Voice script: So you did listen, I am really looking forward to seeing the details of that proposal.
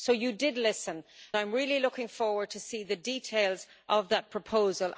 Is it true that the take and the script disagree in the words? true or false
false